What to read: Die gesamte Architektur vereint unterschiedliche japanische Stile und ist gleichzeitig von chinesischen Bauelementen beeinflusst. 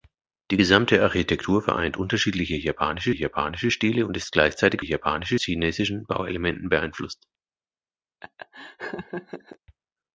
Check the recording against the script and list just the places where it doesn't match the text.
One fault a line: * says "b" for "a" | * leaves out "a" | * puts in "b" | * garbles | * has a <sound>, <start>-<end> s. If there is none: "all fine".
* puts in "japanische"
* says "japanische" for "von"
* has a laugh, 8.2-9.6 s